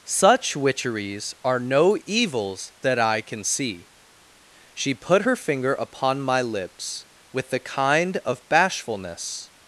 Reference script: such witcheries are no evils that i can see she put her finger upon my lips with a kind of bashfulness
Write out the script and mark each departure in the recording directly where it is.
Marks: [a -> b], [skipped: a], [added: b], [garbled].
such witcheries are no evils that i can see she put her finger upon my lips with [a -> the] kind of bashfulness